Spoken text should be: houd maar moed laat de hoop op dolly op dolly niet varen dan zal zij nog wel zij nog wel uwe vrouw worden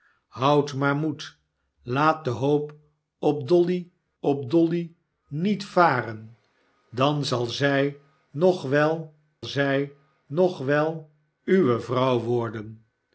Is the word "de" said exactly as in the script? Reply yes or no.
yes